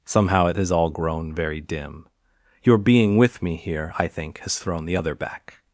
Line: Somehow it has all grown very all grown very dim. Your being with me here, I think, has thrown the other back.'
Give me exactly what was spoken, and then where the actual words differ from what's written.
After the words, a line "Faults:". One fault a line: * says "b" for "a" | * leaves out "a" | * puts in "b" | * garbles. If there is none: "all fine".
Somehow it has all grown very dim. Your being with me here, I think, has thrown the other back.'
Faults:
* leaves out "all grown very"